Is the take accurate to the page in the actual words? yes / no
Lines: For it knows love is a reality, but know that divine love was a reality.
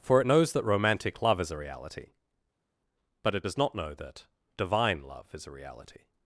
no